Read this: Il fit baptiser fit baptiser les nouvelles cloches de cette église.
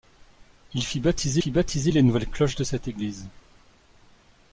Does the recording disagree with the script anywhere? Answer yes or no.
no